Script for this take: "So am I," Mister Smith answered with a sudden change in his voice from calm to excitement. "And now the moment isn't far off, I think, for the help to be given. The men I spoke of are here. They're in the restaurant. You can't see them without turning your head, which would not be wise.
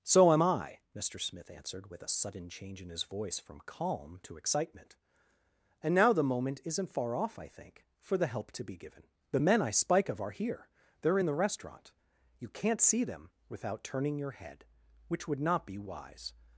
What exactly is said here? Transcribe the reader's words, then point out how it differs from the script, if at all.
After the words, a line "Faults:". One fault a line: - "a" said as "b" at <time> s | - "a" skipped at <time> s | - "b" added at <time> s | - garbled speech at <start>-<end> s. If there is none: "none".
"So am I," Mister Smith answered with a sudden change in his voice from calm to excitement. "And now the moment isn't far off, I think, for the help to be given. The men I spike of are here. They're in the restaurant. You can't see them without turning your head, which would not be wise.
Faults:
- "spoke" said as "spike" at 9.7 s